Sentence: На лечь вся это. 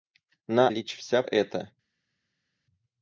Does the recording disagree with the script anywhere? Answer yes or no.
no